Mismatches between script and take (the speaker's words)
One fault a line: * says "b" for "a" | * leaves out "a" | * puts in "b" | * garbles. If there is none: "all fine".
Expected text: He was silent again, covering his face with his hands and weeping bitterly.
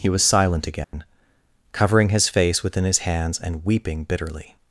* says "within" for "with"